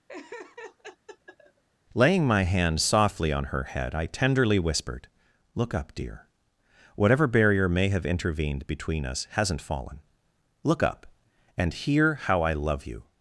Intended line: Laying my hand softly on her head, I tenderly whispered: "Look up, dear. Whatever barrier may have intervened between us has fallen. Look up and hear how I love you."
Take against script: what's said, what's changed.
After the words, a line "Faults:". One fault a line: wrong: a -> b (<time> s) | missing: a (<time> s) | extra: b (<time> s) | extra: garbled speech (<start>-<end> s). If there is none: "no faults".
Laying my hand softly on her head, I tenderly whispered: "Look up, dear. Whatever barrier may have intervened between us hasn't fallen. Look up and hear how I love you."
Faults:
wrong: has -> hasn't (9.3 s)